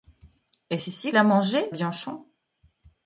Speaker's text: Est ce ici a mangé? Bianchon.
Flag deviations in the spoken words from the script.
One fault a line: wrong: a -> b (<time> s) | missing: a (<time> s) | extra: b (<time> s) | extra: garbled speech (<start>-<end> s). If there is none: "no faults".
no faults